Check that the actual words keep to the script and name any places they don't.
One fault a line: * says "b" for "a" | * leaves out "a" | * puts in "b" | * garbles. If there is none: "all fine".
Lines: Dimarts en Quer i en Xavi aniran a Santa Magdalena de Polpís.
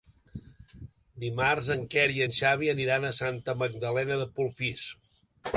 all fine